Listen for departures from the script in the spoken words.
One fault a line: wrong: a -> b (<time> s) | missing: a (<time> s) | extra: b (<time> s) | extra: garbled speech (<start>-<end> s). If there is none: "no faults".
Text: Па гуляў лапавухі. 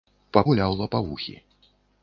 no faults